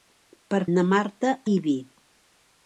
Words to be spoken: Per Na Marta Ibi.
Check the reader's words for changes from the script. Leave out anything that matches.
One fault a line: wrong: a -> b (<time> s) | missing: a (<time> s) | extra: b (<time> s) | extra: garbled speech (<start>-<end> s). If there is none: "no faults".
no faults